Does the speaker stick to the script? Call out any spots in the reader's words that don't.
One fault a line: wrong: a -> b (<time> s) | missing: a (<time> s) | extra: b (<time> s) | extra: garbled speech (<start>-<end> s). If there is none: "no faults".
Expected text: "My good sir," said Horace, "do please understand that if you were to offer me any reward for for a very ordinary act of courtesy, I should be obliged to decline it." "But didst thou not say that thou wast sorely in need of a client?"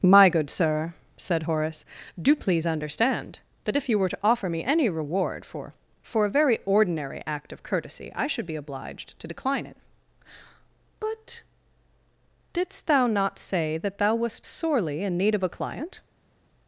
no faults